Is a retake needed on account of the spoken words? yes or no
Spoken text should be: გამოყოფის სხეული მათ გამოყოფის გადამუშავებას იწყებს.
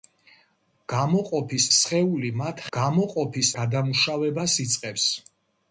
no